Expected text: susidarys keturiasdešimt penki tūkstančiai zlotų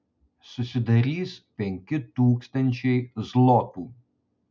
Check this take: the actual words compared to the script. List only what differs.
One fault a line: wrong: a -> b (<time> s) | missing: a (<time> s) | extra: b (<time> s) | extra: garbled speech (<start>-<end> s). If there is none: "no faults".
missing: keturiasdešimt (1.3 s)